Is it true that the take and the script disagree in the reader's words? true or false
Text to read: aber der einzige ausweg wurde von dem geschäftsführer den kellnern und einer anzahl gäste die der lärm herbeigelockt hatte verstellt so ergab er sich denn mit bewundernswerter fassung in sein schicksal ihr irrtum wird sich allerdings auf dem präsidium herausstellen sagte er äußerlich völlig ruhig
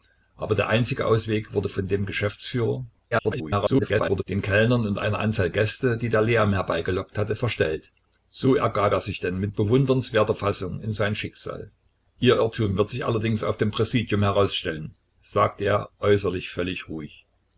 true